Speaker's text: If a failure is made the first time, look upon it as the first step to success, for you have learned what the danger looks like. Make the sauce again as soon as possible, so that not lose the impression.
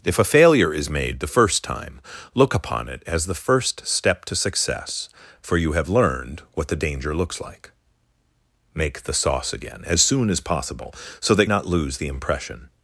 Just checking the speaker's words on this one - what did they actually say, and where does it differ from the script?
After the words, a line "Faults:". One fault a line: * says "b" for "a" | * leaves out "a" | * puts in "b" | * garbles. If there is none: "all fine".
If a failure is made the first time, look upon it as the first step to success, for you have learned what the danger looks like. Make the sauce again as soon as possible, so that not lose the impression.
Faults:
all fine